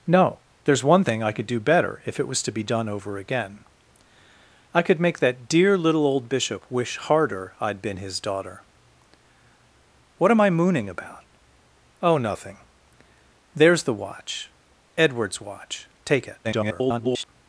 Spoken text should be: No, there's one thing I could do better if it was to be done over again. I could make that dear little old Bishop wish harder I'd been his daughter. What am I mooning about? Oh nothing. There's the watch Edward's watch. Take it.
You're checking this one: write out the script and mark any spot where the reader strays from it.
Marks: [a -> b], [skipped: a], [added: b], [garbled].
No, there's one thing I could do better if it was to be done over again. I could make that dear little old Bishop wish harder I'd been his daughter. What am I mooning about? Oh nothing. There's the watch Edward's watch. Take it. [garbled]